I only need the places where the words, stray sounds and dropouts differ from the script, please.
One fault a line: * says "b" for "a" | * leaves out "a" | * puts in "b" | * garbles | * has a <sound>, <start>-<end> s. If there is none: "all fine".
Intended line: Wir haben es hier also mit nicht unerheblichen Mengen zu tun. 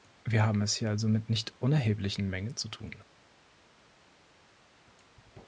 all fine